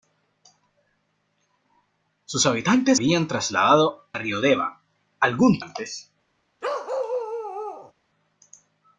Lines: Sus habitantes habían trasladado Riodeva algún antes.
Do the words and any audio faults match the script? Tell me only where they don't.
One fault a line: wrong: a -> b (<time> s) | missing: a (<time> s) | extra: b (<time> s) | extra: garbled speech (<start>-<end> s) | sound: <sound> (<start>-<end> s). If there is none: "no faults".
sound: bark (6.6-7.9 s)